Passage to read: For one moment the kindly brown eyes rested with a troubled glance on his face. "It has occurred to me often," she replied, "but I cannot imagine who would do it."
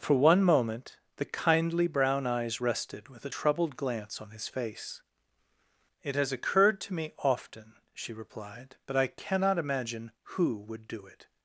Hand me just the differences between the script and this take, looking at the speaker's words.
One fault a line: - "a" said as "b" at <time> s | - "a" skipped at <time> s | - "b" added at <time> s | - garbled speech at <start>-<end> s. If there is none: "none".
none